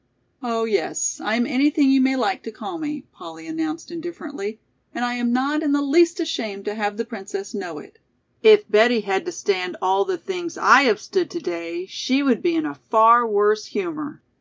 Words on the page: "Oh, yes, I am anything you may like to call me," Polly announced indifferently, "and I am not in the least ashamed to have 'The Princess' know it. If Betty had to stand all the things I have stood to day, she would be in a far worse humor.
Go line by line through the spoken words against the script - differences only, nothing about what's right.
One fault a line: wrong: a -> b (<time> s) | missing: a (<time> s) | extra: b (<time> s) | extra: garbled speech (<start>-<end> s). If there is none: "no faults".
no faults